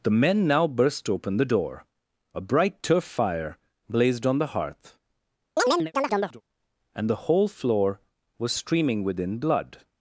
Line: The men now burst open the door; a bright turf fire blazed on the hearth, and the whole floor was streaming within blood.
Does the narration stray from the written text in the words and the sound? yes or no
yes